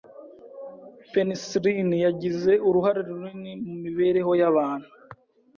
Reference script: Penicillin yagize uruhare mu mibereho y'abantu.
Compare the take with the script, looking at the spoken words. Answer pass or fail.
fail